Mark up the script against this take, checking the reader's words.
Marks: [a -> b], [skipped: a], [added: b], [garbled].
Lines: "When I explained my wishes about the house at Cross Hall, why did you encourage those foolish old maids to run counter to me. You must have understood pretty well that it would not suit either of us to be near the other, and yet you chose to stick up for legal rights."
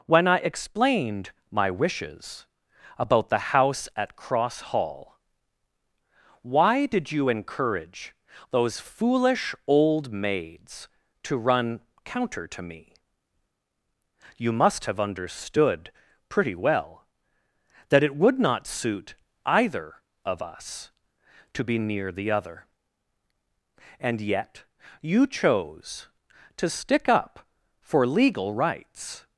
"When I explained my wishes about the house at Cross Hall, why did you encourage those foolish old maids to run counter to me. You must have understood pretty well that it would not suit either of us to be near the other, and yet you chose to stick up for legal rights."